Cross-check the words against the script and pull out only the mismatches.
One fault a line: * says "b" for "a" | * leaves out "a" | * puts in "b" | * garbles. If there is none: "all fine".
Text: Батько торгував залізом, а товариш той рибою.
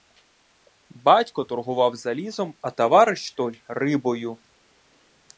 all fine